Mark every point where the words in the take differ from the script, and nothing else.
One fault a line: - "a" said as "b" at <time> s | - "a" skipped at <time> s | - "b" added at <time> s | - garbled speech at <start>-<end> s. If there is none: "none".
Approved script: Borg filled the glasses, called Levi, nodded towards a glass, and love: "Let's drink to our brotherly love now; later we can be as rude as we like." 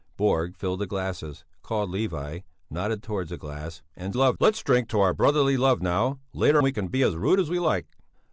none